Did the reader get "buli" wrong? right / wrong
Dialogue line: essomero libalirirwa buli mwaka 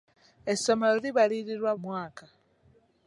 wrong